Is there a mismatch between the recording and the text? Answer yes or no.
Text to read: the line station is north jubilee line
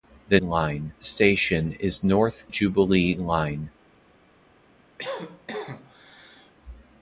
no